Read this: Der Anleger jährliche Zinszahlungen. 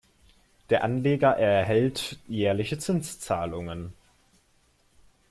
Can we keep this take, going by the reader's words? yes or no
no